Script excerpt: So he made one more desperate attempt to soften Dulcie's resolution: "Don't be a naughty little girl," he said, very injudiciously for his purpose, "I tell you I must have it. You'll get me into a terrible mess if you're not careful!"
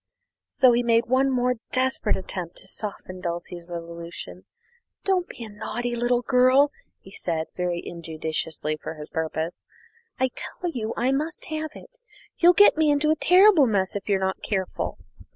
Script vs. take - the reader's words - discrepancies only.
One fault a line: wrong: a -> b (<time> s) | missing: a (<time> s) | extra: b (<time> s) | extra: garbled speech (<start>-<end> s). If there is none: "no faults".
no faults